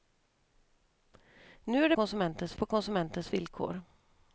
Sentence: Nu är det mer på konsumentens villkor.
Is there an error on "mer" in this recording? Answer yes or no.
yes